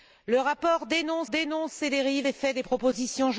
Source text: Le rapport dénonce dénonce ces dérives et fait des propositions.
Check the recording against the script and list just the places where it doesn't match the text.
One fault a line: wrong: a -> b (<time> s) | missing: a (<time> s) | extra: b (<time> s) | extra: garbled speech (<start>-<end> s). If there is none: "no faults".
no faults